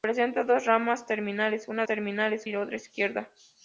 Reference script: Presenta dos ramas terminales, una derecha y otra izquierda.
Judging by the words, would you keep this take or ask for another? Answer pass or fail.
fail